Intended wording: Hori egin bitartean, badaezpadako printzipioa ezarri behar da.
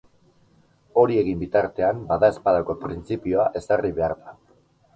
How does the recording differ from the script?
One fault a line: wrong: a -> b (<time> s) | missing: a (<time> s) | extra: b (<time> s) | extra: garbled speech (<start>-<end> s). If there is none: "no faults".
no faults